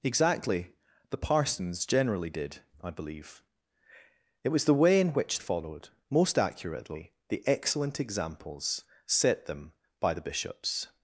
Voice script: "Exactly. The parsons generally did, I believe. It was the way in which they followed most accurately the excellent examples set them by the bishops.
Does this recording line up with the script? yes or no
no